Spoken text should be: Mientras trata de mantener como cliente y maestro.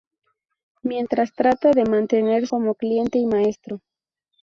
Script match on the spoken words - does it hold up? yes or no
yes